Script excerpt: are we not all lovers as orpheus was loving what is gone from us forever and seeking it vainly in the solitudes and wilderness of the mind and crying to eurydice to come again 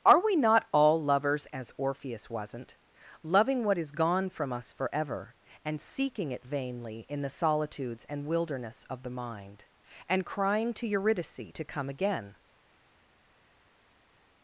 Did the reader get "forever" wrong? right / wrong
right